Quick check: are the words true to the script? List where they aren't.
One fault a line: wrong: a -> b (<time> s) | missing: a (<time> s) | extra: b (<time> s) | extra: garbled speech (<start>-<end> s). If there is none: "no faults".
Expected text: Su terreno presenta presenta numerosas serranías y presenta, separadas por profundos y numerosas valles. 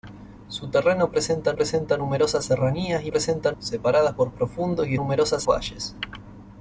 no faults